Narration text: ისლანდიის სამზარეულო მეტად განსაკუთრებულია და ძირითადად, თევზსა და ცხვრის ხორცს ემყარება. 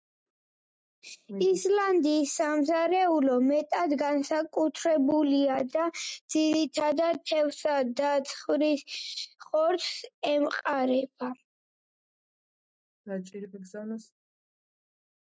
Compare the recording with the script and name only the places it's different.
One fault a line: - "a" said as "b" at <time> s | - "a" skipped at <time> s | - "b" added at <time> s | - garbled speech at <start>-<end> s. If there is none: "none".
none